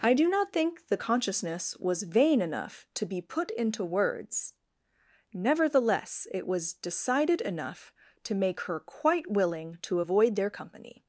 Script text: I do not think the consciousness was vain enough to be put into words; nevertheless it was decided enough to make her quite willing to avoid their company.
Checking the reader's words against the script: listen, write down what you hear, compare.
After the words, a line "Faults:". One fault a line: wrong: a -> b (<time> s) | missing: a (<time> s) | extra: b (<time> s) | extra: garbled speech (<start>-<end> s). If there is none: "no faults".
I do not think the consciousness was vain enough to be put into words; nevertheless it was decided enough to make her quite willing to avoid their company.
Faults:
no faults